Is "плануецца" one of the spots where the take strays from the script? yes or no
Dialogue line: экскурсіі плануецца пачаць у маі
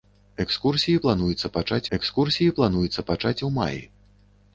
no